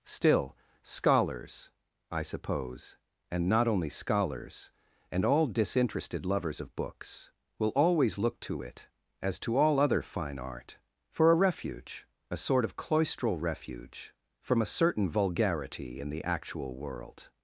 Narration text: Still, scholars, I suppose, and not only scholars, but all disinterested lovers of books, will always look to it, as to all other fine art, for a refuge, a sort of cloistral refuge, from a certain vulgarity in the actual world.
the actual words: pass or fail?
fail